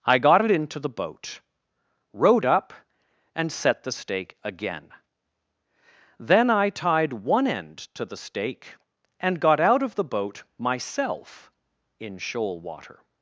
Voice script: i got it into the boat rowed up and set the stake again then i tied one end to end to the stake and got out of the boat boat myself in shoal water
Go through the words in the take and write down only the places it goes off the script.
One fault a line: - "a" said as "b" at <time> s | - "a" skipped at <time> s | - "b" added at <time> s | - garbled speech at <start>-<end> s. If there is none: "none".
- "end to" skipped at 8.0 s
- "boat" skipped at 10.4 s